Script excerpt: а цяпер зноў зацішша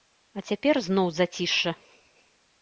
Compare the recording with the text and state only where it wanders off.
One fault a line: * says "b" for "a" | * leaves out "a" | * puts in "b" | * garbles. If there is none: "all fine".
all fine